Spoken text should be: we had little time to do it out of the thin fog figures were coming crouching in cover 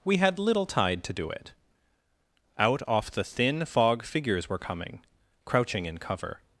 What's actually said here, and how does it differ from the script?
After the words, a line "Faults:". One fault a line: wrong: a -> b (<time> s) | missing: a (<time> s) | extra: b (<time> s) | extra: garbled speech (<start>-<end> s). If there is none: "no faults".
we had little tide to do it out off the thin fog figures were coming crouching in cover
Faults:
wrong: time -> tide (0.7 s)
wrong: of -> off (2.9 s)